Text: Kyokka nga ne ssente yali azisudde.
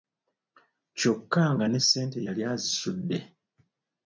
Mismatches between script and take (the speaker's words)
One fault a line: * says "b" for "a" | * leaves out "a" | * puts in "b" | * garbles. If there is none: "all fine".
all fine